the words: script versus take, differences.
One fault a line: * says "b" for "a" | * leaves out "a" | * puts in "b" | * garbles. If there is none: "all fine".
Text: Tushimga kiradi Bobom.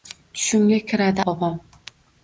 all fine